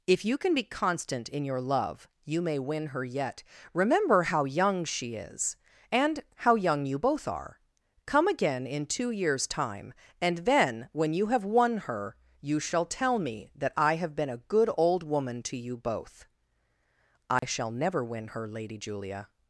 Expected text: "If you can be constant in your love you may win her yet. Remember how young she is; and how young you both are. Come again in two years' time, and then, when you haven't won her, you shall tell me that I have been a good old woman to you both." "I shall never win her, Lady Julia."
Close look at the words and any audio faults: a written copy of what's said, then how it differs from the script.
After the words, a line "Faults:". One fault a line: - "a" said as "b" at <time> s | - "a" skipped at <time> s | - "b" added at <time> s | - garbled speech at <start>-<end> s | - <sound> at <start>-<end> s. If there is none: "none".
"If you can be constant in your love you may win her yet. Remember how young she is; and how young you both are. Come again in two years' time, and then, when you have won her, you shall tell me that I have been a good old woman to you both." "I shall never win her, Lady Julia."
Faults:
- "haven't" said as "have" at 11.3 s
- dropout at 17.4-17.4 s